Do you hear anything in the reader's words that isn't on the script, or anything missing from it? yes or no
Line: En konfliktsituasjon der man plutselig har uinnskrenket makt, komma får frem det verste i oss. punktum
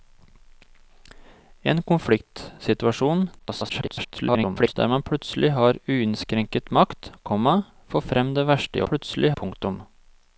yes